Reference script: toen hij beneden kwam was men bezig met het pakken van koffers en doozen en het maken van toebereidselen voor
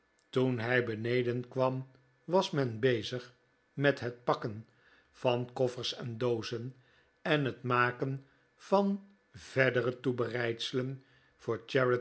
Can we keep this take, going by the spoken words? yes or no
no